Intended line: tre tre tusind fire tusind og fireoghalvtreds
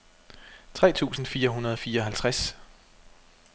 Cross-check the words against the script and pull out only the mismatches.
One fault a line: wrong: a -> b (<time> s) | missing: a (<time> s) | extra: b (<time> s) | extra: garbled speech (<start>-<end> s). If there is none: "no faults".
missing: tre (0.9 s)
wrong: tusind -> hundrede (1.5 s)